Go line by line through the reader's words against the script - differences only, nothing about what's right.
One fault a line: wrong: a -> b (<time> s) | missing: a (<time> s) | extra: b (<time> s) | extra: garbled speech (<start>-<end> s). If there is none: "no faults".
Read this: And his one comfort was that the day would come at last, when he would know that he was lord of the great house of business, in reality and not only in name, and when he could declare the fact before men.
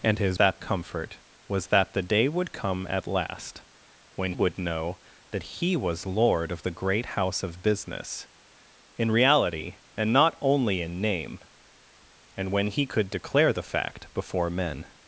wrong: one -> that (0.3 s)
missing: he (4.3 s)